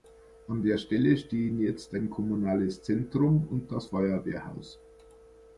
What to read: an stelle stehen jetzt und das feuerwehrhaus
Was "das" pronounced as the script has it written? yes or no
yes